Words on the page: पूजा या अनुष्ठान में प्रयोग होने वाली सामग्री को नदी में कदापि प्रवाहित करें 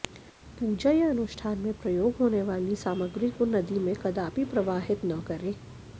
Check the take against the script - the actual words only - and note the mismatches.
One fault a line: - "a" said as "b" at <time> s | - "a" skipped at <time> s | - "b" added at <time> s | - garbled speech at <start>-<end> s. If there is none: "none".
- "न" added at 5.0 s